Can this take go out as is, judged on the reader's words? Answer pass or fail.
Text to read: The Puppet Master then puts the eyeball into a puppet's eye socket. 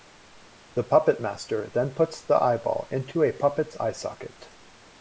pass